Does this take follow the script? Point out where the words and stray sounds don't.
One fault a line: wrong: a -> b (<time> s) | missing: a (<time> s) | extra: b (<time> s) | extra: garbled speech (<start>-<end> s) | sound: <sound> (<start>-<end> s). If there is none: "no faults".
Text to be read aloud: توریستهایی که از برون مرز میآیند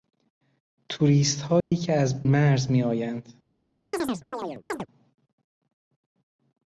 sound: dropout (1.6-1.7 s)
missing: برون (2.2 s)
sound: chirp (3.9-4.9 s)